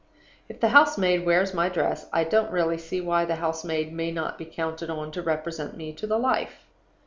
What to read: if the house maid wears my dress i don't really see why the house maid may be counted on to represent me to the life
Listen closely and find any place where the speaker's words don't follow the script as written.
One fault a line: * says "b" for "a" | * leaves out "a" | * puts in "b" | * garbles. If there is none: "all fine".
* puts in "not"